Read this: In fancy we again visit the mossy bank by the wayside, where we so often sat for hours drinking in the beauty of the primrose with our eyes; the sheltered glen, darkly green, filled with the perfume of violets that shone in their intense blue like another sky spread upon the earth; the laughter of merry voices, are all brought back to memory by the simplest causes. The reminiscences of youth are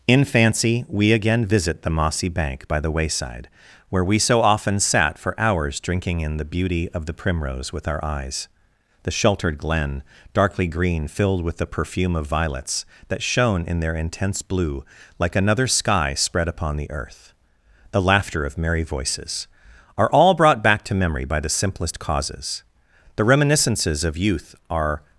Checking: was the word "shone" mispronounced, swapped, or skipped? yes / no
no